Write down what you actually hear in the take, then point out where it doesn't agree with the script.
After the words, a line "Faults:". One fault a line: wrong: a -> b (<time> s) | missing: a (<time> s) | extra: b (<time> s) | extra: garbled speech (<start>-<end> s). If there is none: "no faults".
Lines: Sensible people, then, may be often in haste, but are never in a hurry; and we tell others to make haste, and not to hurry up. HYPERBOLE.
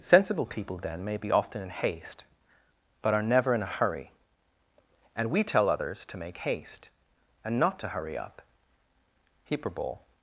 Sensible people, then, may be often in haste, but are never in a hurry; and we tell others to make haste, and not to hurry up. HYPERBOLE.
Faults:
no faults